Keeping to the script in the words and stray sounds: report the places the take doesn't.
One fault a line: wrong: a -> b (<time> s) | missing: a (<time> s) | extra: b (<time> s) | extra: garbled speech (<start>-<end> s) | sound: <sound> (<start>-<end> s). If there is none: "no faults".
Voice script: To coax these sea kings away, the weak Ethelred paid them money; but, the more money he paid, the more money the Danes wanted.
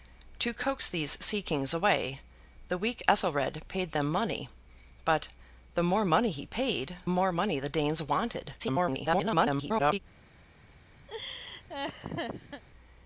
missing: the (7.0 s)
extra: garbled speech (8.6-10.0 s)
sound: laugh (11.1-12.6 s)